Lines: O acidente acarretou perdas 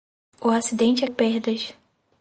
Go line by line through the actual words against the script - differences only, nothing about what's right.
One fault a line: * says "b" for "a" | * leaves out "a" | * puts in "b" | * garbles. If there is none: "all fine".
* leaves out "acarretou"